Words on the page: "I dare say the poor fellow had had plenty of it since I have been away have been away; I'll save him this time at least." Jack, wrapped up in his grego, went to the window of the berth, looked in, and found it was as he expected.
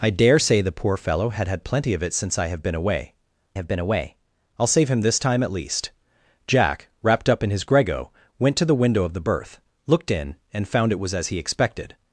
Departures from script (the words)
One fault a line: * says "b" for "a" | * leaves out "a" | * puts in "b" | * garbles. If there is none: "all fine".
all fine